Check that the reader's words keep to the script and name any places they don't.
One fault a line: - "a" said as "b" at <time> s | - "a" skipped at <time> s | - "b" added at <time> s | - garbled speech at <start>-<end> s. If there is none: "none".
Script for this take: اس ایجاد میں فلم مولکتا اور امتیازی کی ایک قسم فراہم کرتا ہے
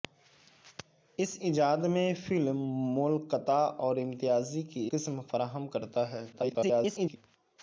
- "ایک" skipped at 4.9 s
- garbled speech at 6.3-7.2 s